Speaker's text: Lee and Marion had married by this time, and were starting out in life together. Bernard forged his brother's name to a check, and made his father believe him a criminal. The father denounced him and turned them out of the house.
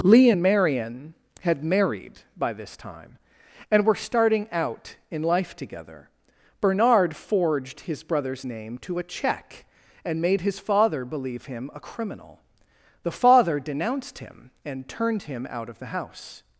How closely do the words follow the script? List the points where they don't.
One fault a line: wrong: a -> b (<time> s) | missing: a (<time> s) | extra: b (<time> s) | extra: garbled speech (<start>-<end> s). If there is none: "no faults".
wrong: them -> him (15.2 s)